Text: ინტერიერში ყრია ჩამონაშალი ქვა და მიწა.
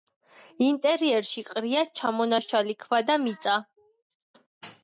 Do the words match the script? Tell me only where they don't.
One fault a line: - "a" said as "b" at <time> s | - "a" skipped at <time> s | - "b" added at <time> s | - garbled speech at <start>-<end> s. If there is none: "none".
none